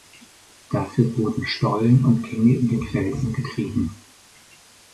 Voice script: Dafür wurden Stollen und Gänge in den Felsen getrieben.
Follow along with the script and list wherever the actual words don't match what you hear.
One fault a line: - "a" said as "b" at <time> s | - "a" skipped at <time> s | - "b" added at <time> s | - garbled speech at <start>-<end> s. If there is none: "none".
none